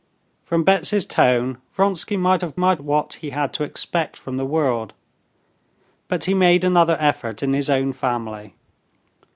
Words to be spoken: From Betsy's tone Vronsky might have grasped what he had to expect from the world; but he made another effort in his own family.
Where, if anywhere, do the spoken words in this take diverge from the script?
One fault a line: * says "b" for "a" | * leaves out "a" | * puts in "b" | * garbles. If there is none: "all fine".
* says "might" for "grasped"